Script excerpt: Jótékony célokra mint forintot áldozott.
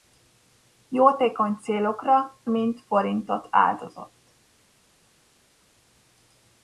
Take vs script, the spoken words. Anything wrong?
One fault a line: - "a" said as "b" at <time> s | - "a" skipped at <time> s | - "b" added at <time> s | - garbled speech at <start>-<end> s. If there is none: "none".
none